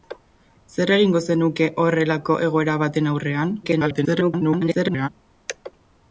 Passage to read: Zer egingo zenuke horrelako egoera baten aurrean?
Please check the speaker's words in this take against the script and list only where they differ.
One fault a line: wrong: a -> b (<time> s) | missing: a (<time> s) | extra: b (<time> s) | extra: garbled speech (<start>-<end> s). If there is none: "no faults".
extra: garbled speech (3.6-5.1 s)